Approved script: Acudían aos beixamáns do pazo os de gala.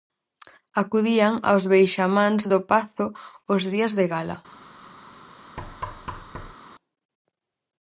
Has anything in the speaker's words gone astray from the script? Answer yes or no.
yes